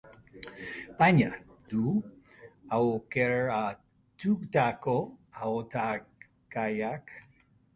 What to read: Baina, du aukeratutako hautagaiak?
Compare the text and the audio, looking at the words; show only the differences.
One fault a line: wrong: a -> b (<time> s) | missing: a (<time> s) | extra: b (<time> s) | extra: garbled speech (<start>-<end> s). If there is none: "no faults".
no faults